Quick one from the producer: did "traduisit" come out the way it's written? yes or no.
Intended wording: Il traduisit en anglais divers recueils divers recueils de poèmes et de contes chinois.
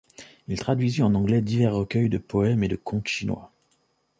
yes